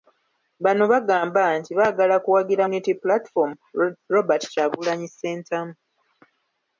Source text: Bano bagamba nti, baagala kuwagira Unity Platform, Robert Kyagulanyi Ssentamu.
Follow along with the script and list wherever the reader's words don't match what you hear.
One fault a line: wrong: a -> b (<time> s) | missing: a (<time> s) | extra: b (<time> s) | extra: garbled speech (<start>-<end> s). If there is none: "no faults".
no faults